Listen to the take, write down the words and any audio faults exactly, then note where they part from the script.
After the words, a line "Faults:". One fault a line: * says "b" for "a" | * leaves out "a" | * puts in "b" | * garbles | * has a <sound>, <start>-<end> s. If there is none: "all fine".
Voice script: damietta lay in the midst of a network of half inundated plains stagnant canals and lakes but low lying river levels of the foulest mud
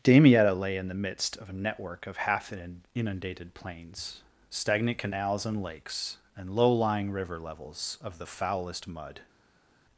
damietta lay in the midst of a network of half inundated plains stagnant canals and lakes and low lying river levels of the foulest mud
Faults:
* says "and" for "but"